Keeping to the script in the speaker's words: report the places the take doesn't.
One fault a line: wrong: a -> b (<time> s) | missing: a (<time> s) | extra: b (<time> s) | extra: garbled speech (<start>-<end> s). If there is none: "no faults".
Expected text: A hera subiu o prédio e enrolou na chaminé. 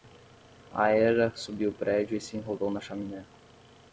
extra: se (2.2 s)